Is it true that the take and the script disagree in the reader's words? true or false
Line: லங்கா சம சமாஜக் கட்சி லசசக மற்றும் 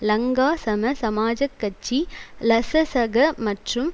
false